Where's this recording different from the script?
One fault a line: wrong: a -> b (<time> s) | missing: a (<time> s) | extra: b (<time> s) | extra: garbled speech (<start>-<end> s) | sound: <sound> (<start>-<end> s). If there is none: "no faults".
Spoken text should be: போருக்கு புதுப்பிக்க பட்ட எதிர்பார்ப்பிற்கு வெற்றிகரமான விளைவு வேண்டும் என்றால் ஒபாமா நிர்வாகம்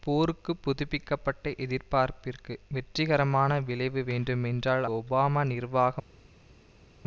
no faults